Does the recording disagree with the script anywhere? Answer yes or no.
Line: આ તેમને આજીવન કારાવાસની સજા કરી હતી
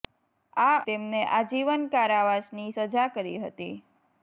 no